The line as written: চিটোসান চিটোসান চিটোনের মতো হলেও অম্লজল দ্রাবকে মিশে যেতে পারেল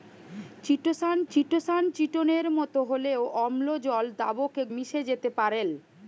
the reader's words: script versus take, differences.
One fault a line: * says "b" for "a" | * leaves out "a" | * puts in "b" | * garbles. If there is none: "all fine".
all fine